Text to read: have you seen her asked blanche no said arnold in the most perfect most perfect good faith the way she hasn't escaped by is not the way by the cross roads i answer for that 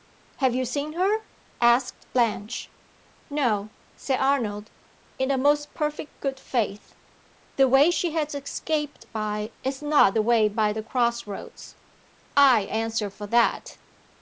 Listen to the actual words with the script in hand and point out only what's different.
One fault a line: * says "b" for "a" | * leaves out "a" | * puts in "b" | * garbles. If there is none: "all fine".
* leaves out "most perfect"
* says "has" for "hasn't"